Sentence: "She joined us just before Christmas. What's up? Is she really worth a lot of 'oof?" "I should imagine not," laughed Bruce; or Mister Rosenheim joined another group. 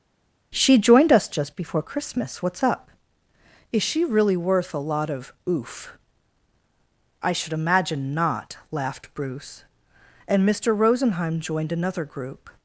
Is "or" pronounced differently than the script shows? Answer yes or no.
yes